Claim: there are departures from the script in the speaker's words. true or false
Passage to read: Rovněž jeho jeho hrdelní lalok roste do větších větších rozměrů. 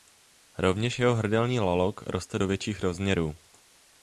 true